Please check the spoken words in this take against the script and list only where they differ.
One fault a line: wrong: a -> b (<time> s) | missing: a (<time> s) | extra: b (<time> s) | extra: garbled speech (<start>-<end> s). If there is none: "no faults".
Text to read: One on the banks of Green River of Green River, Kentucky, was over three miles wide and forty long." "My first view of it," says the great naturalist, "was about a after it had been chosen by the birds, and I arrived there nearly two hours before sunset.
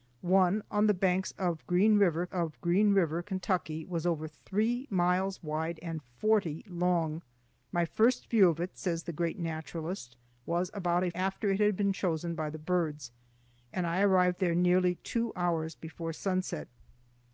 no faults